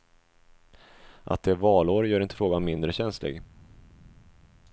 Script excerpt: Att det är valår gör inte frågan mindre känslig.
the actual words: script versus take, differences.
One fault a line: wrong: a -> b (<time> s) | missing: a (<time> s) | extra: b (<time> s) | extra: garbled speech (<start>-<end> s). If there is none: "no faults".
no faults